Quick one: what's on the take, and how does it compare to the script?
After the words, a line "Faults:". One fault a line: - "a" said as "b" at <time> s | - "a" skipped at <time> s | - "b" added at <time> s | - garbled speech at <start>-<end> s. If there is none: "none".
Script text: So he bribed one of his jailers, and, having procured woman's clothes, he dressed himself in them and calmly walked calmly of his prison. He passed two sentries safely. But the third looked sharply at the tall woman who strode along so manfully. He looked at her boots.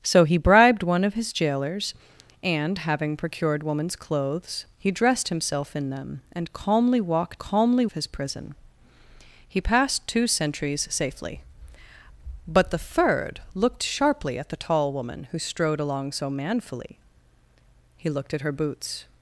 So he bribed one of his jailers, and, having procured woman's clothes, he dressed himself in them and calmly walked calmly of his prison. He passed two sentries safely. But the third looked sharply at the tall woman who strode along so manfully. He looked at her boots.
Faults:
none